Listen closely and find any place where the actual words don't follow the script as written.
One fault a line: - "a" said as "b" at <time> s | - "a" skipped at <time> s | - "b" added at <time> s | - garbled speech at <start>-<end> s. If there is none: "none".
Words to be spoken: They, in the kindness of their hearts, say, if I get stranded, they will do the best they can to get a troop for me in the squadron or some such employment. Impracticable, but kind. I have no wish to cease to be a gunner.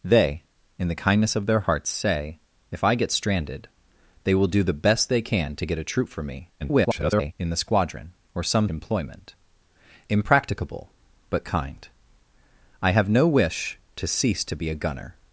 - garbled speech at 6.6-7.3 s
- "such" skipped at 8.7 s